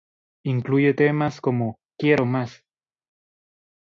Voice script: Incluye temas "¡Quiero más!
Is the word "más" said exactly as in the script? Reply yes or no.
yes